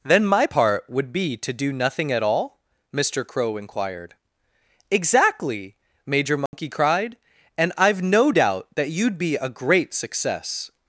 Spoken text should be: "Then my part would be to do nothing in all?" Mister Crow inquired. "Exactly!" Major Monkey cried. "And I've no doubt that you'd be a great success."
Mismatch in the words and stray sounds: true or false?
true